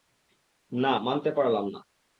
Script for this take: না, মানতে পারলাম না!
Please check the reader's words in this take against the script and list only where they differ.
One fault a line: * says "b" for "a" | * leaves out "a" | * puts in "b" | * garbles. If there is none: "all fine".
all fine